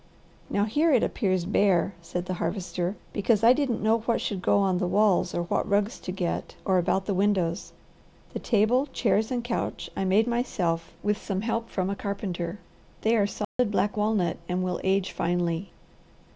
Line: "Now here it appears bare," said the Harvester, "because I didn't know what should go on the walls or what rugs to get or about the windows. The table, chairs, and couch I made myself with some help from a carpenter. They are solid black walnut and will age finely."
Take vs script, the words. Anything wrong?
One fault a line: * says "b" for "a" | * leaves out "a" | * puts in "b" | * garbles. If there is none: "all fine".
all fine